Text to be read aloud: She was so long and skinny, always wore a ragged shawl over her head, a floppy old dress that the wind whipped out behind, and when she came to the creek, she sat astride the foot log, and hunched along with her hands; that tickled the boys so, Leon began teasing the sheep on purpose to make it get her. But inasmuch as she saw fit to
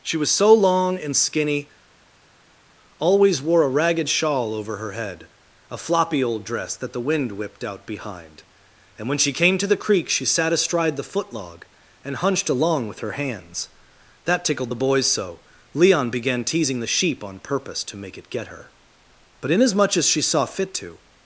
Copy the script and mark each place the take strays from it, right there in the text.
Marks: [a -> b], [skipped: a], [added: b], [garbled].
She was so long and skinny, always wore a ragged shawl over her head, a floppy old dress that the wind whipped out behind, and when she came to the creek, she sat astride the foot log, and hunched along with her hands; that tickled the boys so, Leon began teasing the sheep on purpose to make it get her. But inasmuch as she saw fit to